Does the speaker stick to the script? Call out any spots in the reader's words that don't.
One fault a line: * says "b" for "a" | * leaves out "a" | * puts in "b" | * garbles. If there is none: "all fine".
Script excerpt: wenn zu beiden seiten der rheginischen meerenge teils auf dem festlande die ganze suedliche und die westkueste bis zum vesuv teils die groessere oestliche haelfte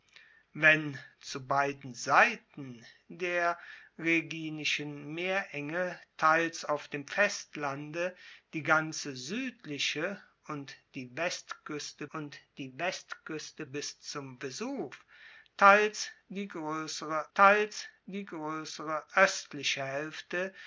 * puts in "und die westkueste"
* puts in "teils die groessere"